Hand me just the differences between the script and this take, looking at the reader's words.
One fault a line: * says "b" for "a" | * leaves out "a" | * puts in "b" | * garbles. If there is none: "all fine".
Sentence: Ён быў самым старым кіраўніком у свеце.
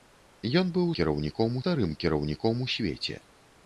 * says "кіраўніком" for "самым"